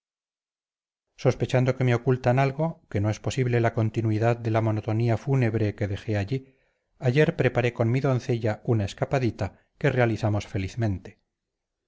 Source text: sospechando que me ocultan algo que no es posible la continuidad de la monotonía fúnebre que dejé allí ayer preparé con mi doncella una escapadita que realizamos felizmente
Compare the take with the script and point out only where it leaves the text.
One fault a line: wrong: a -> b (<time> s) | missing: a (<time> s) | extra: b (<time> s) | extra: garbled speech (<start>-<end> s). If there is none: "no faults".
no faults